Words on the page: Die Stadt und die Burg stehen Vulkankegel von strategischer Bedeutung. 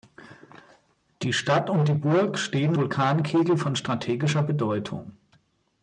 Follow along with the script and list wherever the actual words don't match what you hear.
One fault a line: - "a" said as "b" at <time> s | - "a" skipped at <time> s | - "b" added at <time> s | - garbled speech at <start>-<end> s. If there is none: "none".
none